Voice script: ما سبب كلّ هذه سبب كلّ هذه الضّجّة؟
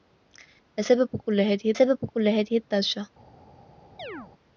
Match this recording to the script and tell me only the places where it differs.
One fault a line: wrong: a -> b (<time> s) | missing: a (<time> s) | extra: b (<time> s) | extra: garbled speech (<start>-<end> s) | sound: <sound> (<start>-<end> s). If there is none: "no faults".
sound: chirp (4.0-4.3 s)